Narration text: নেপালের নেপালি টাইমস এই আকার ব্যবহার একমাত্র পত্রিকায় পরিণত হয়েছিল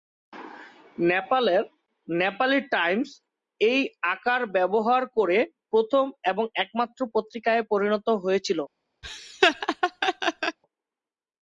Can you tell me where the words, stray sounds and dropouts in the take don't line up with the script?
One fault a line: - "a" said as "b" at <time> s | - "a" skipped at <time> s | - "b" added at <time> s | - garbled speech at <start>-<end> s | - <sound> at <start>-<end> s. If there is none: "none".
- "করে প্রথম এবং" added at 5.2 s
- laugh at 9.0-10.6 s